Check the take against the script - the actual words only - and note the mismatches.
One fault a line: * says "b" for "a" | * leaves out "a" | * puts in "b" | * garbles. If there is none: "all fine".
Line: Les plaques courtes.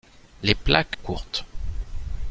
all fine